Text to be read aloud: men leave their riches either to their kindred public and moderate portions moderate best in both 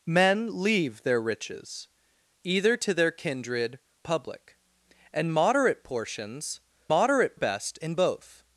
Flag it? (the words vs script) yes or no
no